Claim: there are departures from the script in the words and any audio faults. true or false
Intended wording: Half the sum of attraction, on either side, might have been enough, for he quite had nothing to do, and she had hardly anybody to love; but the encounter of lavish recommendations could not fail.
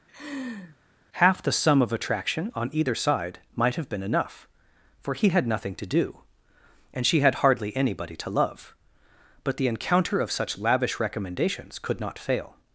true